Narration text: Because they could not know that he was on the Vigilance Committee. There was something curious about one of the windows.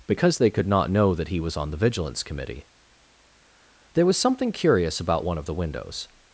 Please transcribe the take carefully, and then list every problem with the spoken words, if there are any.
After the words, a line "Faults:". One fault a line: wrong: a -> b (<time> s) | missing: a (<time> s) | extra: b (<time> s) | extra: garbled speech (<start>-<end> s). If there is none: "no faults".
Because they could not know that he was on the Vigilance Committee. There was something curious about one of the windows.
Faults:
no faults